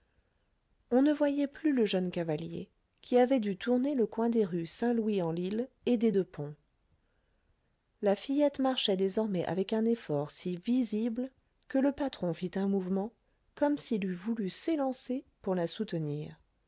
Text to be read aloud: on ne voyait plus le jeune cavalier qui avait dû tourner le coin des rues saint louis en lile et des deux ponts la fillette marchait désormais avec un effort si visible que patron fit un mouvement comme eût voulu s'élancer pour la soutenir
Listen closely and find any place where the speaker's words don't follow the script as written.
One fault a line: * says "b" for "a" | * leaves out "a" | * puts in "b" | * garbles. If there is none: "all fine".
* puts in "le"
* puts in "s'il"